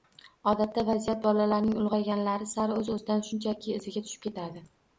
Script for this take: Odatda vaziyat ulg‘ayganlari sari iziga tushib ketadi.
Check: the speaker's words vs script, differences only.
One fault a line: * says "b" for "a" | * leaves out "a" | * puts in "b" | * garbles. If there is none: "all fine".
* puts in "bolalarning"
* puts in "o‘z o‘zidan shunchaki"